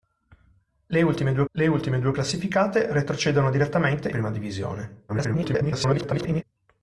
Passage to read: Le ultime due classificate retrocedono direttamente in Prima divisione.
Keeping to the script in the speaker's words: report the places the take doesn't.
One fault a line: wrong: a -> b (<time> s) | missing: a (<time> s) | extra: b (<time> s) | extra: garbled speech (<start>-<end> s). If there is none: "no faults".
extra: le ultime due (1.5 s)
missing: in (4.1 s)
extra: garbled speech (5.1-6.4 s)